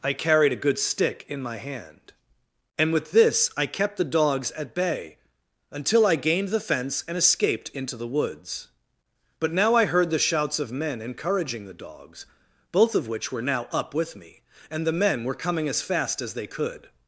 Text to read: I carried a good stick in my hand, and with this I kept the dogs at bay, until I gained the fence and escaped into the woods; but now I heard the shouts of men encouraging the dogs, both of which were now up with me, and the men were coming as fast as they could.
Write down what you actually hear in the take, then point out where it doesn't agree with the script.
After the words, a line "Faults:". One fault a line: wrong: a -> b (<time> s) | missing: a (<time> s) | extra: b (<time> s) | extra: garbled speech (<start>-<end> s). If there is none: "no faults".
I carried a good stick in my hand, and with this I kept the dogs at bay, until I gained the fence and escaped into the woods; but now I heard the shouts of men encouraging the dogs, both of which were now up with me, and the men were coming as fast as they could.
Faults:
no faults